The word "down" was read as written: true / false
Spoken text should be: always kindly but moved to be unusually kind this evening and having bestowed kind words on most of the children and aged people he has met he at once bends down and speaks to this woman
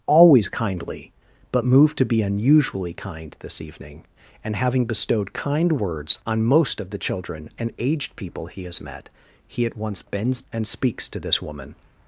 false